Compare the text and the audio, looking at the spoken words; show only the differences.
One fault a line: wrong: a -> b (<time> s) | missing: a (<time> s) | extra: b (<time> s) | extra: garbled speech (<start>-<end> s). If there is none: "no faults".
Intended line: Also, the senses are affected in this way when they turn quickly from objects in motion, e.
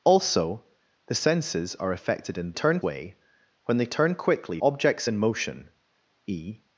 wrong: this -> turn (2.5 s)
missing: from (4.6 s)